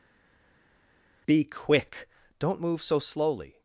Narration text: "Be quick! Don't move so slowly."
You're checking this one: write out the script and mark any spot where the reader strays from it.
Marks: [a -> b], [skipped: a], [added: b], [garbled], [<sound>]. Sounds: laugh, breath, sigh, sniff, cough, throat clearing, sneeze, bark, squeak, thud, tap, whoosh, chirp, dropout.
"Be quick! Don't move so slowly."